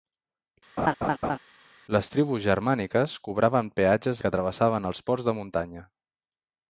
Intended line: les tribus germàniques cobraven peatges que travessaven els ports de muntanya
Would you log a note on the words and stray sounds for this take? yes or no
yes